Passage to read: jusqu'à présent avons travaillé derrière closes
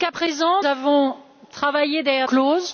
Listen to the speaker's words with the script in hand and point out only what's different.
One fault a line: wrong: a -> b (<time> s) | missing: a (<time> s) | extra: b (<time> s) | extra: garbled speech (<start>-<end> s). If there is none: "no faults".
no faults